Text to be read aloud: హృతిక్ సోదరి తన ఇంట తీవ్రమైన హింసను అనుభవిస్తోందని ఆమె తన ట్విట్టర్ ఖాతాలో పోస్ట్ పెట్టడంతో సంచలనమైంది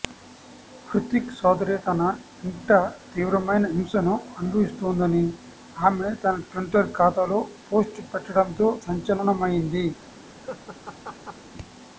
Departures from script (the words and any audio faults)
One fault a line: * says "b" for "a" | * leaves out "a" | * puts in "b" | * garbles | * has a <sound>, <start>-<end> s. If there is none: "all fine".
* has a laugh, 10.4-11.4 s